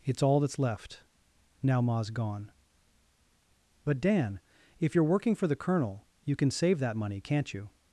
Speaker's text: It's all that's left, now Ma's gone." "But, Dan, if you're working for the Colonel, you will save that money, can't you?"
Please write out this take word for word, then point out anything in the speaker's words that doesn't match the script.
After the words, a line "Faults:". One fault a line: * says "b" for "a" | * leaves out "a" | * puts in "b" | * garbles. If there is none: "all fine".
It's all that's left, now Ma's gone." "But, Dan, if you're working for the Colonel, you can save that money, can't you?"
Faults:
* says "can" for "will"